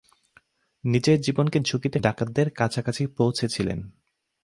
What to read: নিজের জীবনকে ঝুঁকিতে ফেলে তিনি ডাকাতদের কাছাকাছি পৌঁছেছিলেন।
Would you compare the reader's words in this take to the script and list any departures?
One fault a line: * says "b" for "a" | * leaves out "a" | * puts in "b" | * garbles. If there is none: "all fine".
* leaves out "ফেলে তিনি"